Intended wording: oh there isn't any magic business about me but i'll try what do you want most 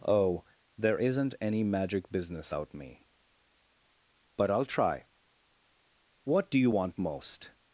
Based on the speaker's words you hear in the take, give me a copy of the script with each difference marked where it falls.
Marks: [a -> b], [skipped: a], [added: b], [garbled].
oh there isn't any magic business [about -> out] me but i'll try what do you want most